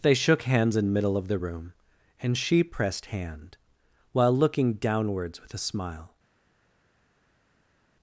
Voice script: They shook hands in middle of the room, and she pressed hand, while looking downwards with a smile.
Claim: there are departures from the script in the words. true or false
false